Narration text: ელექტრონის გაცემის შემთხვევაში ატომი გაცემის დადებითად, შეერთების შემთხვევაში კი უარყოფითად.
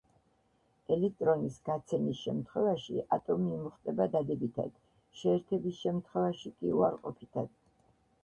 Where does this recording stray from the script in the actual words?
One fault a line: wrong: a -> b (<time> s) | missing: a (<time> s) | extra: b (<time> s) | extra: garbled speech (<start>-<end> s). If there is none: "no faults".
wrong: გაცემის -> იმუხტება (3.6 s)